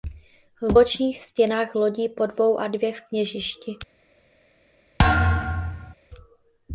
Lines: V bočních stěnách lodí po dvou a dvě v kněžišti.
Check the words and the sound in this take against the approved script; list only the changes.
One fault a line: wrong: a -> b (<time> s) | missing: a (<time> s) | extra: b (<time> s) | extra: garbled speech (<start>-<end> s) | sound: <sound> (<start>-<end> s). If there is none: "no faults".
sound: thud (5.0-5.9 s)